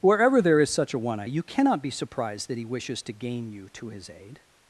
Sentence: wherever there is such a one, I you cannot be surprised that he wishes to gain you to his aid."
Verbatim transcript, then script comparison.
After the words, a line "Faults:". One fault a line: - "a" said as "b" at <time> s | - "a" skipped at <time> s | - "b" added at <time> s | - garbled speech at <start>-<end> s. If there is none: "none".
wherever there is such a one, I you cannot be surprised that he wishes to gain you to his aid."
Faults:
none